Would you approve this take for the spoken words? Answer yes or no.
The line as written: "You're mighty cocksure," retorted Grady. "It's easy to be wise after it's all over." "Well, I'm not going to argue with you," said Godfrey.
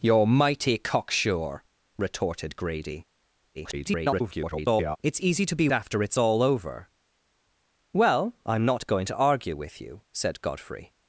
no